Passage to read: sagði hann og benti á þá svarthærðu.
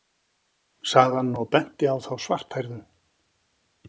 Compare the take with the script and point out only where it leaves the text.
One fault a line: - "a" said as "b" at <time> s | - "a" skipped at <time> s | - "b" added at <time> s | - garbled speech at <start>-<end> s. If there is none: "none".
none